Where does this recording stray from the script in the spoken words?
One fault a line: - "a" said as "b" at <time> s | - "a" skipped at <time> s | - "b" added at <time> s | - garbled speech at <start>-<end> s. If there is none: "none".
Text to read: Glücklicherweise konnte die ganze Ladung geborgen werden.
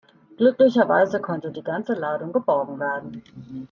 none